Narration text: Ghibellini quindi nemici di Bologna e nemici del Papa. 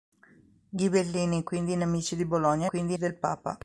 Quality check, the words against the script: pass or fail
fail